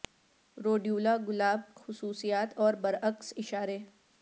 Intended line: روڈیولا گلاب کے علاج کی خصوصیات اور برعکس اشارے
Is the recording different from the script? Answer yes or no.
yes